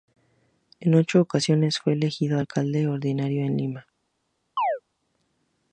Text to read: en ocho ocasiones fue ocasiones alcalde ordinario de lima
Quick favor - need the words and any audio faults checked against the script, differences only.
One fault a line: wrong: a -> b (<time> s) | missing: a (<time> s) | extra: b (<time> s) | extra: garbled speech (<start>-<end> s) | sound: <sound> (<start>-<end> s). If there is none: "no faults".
wrong: ocasiones -> elegido (1.9 s)
sound: chirp (4.6-4.8 s)